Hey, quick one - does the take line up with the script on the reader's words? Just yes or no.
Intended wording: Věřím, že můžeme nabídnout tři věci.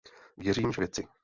no